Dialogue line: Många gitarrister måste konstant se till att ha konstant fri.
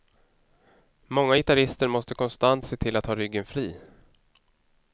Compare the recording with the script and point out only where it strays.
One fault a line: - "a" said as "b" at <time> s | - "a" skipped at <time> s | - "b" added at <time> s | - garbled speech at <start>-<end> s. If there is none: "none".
- "konstant" said as "ryggen" at 3.2 s